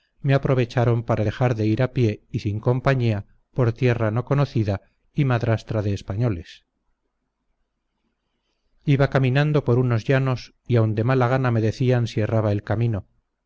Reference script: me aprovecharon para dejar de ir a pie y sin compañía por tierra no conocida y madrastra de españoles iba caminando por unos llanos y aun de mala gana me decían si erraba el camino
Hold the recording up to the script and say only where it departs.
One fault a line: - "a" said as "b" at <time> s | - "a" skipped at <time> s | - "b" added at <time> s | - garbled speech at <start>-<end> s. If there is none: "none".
none